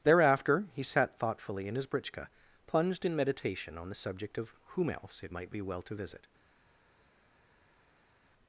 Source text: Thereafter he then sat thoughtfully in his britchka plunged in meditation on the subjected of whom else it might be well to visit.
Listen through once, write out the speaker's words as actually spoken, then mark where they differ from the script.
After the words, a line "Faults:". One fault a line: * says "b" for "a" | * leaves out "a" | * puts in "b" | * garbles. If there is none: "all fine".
Thereafter he sat thoughtfully in his britchka plunged in meditation on the subject of whom else it might be well to visit.
Faults:
* leaves out "then"
* says "subject" for "subjected"